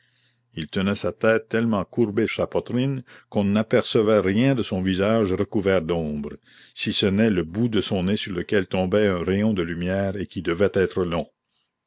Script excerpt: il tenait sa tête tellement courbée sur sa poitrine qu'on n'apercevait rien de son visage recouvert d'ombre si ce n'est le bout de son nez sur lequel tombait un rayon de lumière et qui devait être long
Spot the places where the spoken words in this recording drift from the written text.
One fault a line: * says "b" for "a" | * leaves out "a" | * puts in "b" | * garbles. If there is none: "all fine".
* leaves out "sur"